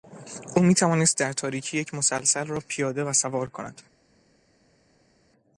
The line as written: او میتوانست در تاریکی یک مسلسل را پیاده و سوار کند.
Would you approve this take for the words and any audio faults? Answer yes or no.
yes